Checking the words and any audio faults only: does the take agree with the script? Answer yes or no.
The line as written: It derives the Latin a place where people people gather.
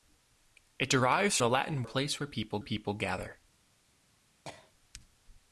no